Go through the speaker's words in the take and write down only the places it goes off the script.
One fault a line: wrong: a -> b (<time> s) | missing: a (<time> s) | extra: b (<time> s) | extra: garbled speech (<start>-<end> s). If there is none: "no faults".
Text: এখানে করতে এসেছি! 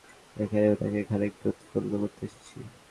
extra: উনাকে খানিকটা উৎফুল্ল (0.7 s)